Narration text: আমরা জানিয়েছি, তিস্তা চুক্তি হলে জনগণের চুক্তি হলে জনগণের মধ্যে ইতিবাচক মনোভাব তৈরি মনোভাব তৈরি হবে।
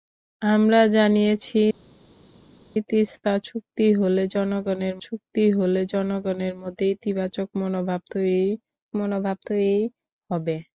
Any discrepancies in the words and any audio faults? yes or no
no